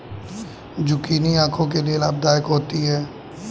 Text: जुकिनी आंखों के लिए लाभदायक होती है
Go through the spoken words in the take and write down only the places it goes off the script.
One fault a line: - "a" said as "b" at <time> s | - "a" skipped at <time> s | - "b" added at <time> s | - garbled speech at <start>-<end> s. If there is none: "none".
none